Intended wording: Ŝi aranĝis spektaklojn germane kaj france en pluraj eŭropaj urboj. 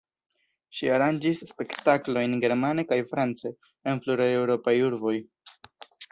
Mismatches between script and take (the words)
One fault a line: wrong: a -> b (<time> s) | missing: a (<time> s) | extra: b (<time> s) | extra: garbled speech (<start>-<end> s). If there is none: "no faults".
no faults